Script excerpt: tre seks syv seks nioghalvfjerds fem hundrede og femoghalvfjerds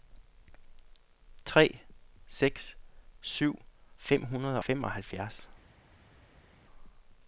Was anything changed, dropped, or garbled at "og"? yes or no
yes